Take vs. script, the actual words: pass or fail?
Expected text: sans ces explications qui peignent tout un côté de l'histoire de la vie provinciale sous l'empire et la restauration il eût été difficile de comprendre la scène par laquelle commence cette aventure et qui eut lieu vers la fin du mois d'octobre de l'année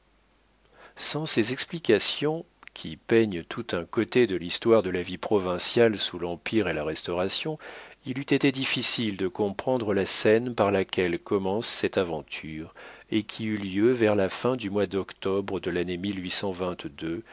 pass